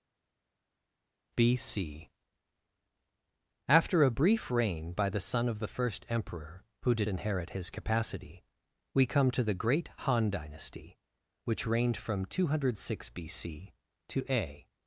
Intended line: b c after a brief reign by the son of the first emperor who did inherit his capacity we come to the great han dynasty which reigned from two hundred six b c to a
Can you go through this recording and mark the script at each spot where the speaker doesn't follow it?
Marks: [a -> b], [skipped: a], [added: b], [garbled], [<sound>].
b c after a brief reign by the son of the first emperor who did inherit his capacity we come to the great han dynasty which reigned from two hundred six b c to a